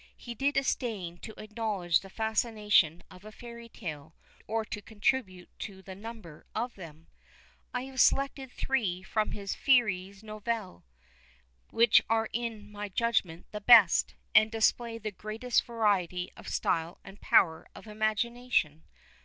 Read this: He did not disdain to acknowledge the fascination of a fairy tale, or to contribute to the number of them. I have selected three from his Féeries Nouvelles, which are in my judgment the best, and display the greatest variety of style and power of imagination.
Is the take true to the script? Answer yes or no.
no